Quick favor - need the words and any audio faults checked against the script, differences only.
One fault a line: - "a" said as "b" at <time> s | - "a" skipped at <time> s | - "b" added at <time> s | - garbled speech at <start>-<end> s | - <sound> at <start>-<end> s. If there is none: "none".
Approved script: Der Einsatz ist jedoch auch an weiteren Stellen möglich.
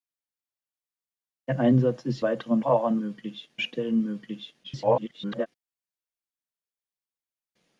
- "jedoch" said as "weiteren" at 2.2 s
- "weiteren" said as "möglich" at 3.0 s
- garbled speech at 4.6-5.5 s